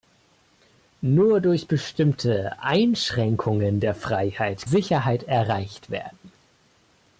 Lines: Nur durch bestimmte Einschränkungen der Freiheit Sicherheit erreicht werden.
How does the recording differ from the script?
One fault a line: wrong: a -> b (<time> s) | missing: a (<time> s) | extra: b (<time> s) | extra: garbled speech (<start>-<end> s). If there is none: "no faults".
no faults